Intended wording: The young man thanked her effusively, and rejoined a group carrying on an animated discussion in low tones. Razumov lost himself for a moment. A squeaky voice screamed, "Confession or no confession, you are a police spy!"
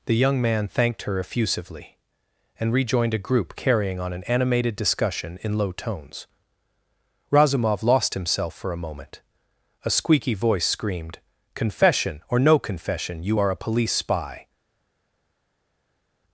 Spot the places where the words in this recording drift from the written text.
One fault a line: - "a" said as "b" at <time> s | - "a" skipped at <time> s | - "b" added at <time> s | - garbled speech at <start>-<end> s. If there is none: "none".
none